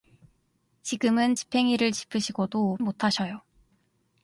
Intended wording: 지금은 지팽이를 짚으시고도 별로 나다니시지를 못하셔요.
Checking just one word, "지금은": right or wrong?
right